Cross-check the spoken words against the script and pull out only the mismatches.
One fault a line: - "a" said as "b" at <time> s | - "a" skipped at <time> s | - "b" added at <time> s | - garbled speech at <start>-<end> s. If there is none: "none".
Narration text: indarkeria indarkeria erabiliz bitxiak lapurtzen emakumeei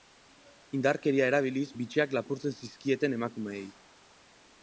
- "indarkeria" skipped at 1.3 s
- "zizkieten" added at 2.6 s